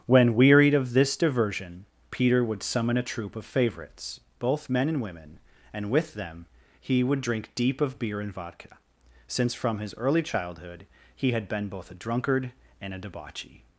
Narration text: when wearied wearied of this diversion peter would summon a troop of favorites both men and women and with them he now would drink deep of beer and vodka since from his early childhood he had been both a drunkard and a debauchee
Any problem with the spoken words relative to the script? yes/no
yes